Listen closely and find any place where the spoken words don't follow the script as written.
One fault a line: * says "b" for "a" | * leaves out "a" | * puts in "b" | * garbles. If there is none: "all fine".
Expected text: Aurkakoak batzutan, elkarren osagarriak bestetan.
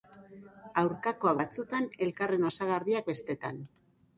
all fine